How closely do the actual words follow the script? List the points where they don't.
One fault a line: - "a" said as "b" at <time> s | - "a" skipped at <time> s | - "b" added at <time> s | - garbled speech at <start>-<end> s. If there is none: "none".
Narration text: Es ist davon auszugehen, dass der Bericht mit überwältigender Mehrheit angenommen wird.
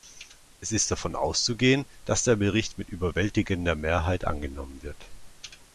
none